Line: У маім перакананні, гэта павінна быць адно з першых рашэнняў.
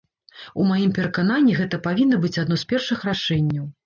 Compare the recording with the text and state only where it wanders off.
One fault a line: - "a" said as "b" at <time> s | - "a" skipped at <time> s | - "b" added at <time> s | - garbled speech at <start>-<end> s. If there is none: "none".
none